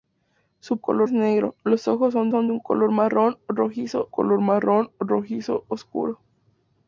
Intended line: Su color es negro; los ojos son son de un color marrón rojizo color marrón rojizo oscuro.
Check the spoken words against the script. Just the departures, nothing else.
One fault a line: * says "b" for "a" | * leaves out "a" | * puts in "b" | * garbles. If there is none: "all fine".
all fine